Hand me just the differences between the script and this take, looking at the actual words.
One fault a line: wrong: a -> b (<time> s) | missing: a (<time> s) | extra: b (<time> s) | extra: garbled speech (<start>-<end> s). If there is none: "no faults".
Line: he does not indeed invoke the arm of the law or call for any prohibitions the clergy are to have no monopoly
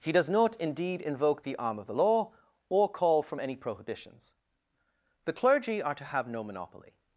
wrong: for -> from (3.2 s)